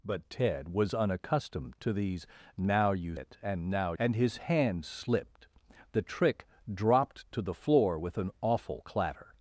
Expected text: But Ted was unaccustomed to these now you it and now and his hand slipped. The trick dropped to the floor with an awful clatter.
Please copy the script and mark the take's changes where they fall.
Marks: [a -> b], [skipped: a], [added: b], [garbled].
But Ted was unaccustomed to these now you it and now and his hand slipped. The trick dropped to the floor with an awful clatter.